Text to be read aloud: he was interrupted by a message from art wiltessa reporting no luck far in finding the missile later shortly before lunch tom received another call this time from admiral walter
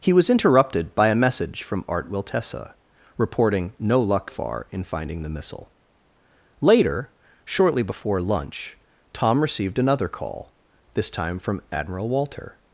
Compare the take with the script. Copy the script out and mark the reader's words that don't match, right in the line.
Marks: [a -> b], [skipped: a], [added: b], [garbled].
he was interrupted by a message from art wiltessa reporting no luck far in finding the missile later shortly before lunch tom received another call this time from admiral walter